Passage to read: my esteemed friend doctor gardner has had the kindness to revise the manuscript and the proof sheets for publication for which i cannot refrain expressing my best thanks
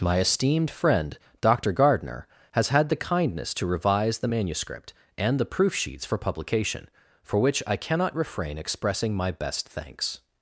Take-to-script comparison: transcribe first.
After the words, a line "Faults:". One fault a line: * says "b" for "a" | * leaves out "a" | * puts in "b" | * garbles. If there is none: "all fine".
my esteemed friend doctor gardner has had the kindness to revise the manuscript and the proof sheets for publication for which i cannot refrain expressing my best thanks
Faults:
all fine